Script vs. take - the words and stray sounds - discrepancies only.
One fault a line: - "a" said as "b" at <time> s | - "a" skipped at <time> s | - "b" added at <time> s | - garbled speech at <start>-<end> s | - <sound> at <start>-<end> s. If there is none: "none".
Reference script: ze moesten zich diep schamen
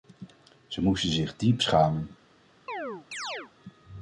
- chirp at 2.7-3.5 s